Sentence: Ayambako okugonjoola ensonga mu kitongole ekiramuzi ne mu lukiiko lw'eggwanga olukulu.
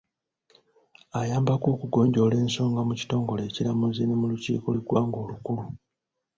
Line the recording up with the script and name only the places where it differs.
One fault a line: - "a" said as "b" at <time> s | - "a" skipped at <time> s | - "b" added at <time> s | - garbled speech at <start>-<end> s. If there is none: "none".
none